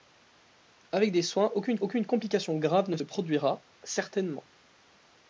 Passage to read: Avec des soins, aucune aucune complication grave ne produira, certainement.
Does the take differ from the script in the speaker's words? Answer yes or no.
no